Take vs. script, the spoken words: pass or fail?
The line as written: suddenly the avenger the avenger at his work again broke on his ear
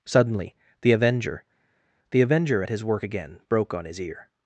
pass